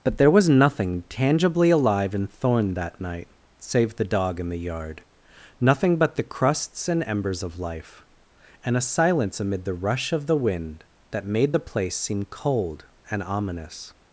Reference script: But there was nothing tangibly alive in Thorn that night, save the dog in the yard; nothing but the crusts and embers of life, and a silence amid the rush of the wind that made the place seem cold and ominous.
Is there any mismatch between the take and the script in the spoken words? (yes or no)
no